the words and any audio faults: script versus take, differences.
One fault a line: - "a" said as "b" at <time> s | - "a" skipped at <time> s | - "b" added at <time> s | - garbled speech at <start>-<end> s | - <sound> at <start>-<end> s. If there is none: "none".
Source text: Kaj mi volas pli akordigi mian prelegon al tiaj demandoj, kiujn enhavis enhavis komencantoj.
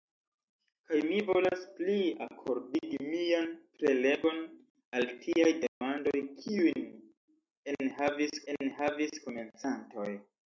- dropout at 5.7-5.8 s